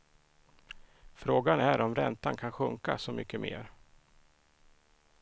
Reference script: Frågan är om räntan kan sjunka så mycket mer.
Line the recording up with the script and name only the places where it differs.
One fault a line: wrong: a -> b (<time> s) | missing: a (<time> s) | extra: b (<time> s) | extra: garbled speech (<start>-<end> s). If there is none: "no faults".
no faults